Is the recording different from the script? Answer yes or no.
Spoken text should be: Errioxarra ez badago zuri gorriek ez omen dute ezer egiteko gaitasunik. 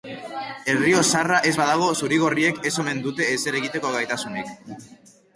no